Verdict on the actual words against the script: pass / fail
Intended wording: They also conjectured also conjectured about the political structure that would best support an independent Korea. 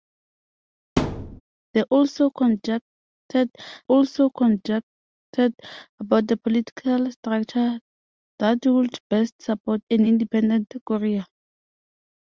pass